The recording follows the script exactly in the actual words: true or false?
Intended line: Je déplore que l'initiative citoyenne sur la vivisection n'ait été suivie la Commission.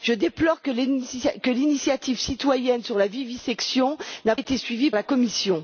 true